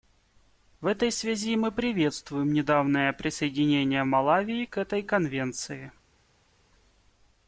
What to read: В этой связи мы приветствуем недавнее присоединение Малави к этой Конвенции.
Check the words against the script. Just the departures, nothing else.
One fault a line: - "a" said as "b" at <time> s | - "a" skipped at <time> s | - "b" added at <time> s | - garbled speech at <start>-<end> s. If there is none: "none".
none